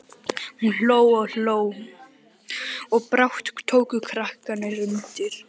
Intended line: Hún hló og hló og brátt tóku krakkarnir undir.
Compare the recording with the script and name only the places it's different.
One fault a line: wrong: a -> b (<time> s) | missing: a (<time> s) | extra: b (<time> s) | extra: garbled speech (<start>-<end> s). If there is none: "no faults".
no faults